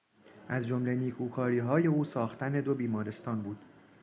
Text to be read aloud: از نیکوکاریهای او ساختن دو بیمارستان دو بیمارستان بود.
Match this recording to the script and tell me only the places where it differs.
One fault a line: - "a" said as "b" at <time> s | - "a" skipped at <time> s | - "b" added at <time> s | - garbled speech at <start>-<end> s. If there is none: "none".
- "جمله" added at 0.7 s
- "دو بیمارستان" skipped at 3.4 s